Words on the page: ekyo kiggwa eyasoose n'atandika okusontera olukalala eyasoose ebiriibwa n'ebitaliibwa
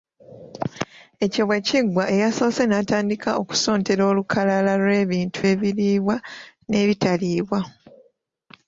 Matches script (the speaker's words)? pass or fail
fail